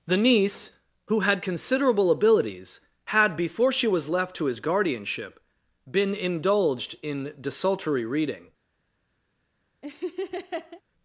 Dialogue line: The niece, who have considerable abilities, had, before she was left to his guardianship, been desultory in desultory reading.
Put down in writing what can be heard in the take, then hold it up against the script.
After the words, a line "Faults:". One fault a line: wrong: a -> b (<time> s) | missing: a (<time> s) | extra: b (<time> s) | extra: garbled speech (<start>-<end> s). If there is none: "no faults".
The niece, who had considerable abilities, had, before she was left to his guardianship, been indulged in desultory reading.
Faults:
wrong: have -> had (1.2 s)
wrong: desultory -> indulged (6.1 s)